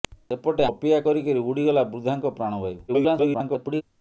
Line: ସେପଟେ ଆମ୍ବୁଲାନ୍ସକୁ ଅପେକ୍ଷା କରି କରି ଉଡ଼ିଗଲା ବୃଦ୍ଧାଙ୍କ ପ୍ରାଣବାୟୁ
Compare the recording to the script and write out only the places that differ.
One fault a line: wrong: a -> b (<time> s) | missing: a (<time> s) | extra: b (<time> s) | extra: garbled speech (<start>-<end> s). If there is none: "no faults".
missing: ଆମ୍ବୁଲାନ୍ସକୁ (0.7 s)
extra: garbled speech (2.9-3.8 s)